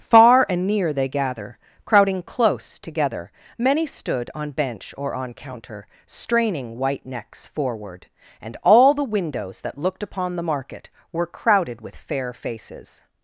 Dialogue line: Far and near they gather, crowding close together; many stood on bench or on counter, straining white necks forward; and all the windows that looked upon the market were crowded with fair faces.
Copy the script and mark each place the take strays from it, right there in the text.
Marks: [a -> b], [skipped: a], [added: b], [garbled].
Far and near they gather, crowding close together; many stood on bench or on counter, straining white necks forward; and all the windows that looked upon the market were crowded with fair faces.